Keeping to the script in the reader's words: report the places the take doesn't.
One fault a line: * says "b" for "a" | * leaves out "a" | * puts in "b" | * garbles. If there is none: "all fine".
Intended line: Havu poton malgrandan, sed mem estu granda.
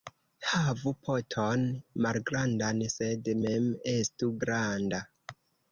all fine